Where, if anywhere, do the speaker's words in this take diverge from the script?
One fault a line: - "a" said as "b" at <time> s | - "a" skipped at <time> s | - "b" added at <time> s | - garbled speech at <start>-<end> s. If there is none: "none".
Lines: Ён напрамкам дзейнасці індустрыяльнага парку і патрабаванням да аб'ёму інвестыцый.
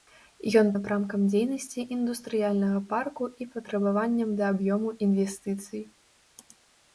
none